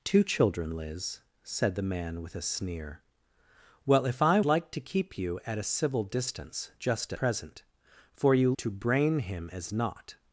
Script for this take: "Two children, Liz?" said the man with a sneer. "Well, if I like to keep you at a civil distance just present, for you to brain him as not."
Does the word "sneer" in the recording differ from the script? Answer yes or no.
no